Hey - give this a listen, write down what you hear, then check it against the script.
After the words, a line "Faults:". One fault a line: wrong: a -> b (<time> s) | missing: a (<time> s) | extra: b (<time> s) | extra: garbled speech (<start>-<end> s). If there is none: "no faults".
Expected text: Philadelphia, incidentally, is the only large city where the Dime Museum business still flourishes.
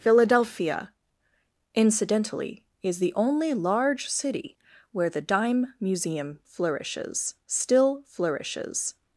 Philadelphia, incidentally, is the only large city where the Dime Museum flourishes still flourishes.
Faults:
wrong: business -> flourishes (6.5 s)